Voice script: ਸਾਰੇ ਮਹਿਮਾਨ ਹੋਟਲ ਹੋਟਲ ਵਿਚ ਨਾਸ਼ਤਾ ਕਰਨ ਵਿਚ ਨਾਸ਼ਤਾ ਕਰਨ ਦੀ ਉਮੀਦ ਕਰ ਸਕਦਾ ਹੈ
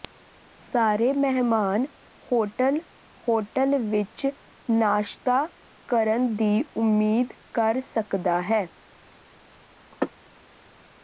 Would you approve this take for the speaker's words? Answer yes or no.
no